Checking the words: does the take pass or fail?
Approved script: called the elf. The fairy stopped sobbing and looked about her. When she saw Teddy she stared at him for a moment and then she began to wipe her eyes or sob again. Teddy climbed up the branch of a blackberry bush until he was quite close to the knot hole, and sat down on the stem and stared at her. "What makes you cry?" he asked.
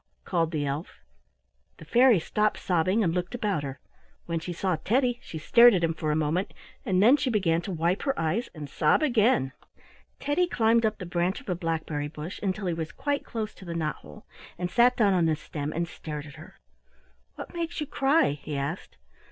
fail